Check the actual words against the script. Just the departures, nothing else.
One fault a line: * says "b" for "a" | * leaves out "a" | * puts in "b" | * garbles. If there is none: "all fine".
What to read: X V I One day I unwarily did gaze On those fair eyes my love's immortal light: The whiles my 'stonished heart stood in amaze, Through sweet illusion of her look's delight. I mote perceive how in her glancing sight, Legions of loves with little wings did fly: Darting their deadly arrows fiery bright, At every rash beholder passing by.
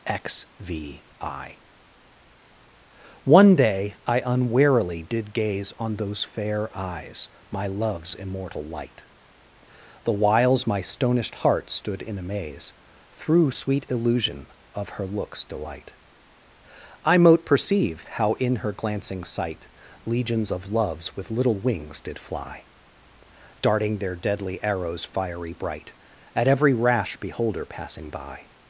all fine